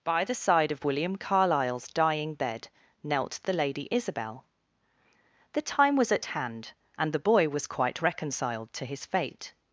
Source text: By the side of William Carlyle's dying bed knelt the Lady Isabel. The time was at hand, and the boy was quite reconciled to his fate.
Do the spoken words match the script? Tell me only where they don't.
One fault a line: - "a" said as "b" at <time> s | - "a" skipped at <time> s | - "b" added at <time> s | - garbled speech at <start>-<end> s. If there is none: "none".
none